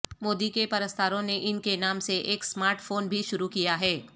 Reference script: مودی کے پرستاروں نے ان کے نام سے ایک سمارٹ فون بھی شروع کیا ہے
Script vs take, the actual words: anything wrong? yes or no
no